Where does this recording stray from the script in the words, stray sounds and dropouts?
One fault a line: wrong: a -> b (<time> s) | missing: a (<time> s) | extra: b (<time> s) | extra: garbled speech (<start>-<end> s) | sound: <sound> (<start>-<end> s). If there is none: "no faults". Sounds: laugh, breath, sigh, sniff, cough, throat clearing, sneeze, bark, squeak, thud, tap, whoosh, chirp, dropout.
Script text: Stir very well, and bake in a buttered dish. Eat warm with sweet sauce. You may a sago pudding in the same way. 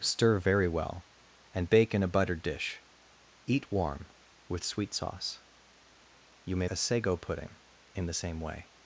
no faults